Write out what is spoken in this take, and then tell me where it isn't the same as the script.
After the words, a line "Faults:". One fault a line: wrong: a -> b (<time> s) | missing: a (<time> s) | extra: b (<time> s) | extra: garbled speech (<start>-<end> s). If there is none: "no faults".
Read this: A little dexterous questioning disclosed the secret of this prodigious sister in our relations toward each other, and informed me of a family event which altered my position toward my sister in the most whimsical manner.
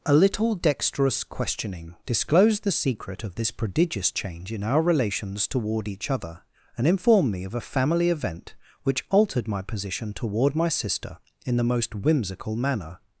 A little dexterous questioning disclosed the secret of this prodigious change in our relations toward each other, and informed me of a family event which altered my position toward my sister in the most whimsical manner.
Faults:
wrong: sister -> change (4.1 s)